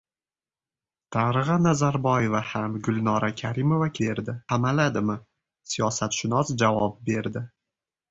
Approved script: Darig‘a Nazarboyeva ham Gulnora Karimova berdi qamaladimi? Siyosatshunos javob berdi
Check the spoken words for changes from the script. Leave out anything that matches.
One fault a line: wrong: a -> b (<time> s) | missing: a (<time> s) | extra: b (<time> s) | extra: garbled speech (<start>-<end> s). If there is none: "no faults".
no faults